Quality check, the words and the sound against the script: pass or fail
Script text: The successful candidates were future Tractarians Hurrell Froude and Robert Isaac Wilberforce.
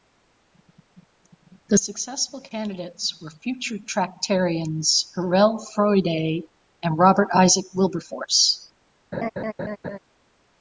fail